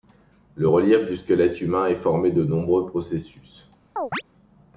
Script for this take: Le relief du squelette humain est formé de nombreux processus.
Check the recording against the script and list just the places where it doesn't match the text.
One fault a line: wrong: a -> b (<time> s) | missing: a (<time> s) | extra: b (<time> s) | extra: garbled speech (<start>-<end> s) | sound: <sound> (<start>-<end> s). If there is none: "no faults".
sound: chirp (4.0-4.2 s)